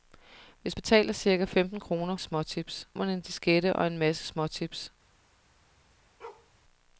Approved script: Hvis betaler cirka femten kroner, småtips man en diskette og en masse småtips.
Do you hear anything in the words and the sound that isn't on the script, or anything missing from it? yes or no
yes